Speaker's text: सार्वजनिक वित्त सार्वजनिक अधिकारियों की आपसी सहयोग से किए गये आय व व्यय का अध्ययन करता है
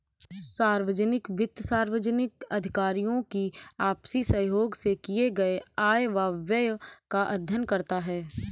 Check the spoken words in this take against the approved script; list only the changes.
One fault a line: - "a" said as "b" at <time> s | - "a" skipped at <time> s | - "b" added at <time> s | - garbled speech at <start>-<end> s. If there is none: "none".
none